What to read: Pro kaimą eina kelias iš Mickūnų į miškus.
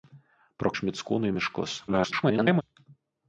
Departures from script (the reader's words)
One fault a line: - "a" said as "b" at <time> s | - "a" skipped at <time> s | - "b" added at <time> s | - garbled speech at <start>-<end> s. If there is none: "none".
- "kaimą eina kelias" skipped at 0.7 s
- garbled speech at 1.9-2.6 s